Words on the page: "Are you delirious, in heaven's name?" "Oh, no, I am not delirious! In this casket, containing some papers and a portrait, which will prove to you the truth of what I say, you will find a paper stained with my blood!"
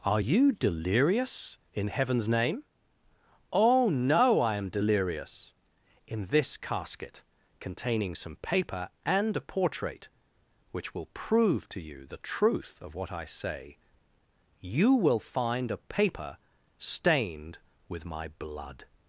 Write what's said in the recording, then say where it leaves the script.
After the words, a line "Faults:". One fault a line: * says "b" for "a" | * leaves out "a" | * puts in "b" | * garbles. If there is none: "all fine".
"Are you delirious, in heaven's name?" "Oh, no, I am delirious! In this casket, containing some paper and a portrait, which will prove to you the truth of what I say, you will find a paper stained with my blood!"
Faults:
* leaves out "not"
* says "paper" for "papers"